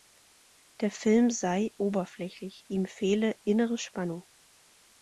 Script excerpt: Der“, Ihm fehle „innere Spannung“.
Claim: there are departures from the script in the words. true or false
true